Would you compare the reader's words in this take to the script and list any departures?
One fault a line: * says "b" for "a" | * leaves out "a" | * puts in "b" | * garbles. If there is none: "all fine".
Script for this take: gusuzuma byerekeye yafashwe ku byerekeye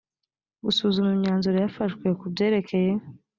* says "imyanzuro" for "byerekeye"